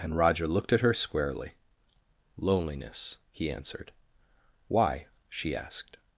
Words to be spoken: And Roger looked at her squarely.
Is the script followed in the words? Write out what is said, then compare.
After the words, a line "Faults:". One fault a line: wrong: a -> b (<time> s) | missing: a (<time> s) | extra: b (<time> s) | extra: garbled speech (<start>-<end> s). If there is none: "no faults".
And Roger looked at her squarely. "Loneliness," he answered. "Why?" she asked
Faults:
extra: Loneliness he answered Why she asked (2.4 s)